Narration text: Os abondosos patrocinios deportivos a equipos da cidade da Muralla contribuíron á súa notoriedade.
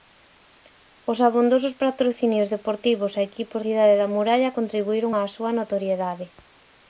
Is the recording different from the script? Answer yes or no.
yes